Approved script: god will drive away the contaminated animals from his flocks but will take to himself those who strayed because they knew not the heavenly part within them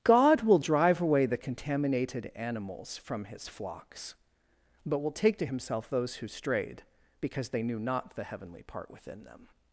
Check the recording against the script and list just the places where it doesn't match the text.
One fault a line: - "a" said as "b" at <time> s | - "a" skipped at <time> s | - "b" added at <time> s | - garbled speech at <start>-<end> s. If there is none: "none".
none